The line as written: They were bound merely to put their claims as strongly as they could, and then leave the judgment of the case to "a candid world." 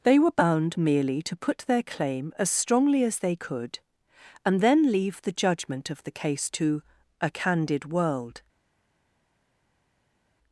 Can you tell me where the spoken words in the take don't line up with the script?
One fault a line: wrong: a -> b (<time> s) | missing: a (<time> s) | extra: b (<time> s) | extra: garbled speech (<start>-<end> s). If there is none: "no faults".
wrong: claims -> claim (1.8 s)